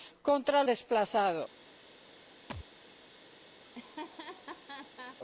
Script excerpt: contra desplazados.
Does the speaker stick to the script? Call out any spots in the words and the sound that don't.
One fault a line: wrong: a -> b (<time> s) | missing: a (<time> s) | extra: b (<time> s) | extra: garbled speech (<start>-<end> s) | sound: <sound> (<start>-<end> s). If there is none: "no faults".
sound: thud (2.5-2.7 s)
sound: laugh (3.6-5.2 s)